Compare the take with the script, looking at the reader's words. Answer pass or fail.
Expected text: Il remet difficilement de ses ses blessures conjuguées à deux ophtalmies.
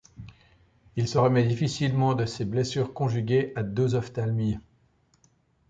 fail